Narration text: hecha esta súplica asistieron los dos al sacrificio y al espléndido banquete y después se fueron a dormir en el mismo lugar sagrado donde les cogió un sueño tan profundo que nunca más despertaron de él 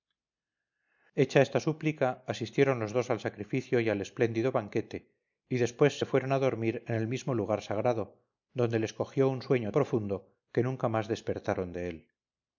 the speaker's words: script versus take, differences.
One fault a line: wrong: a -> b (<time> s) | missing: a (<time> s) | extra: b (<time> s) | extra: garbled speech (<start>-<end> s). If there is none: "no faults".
missing: tan (9.7 s)